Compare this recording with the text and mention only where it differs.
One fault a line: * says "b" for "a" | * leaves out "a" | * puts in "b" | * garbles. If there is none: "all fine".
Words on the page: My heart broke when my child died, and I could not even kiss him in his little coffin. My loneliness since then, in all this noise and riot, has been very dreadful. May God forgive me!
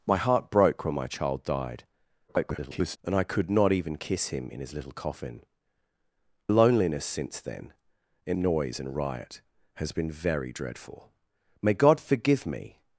* garbles
* leaves out "My"
* leaves out "all this"